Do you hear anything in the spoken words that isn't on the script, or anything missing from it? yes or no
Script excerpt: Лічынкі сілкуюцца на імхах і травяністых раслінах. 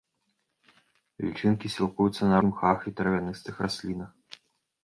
no